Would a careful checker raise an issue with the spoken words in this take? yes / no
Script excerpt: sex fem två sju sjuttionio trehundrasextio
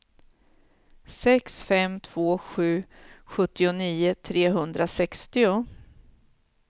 no